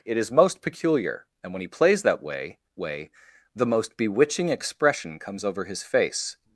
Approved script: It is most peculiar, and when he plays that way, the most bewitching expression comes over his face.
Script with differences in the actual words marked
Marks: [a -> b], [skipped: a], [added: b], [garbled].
It is most peculiar, and when he plays that way, [added: way] the most bewitching expression comes over his face.